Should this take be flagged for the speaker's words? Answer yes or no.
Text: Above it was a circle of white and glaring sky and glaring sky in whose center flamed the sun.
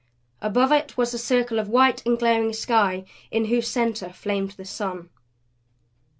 yes